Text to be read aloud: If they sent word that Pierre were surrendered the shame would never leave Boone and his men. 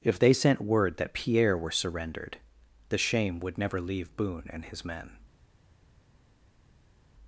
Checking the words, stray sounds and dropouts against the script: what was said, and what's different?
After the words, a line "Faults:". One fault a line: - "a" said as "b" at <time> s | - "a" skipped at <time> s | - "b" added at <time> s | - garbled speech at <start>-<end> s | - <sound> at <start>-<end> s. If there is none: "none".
If they sent word that Pierre were surrendered the shame would never leave Boone and his men.
Faults:
none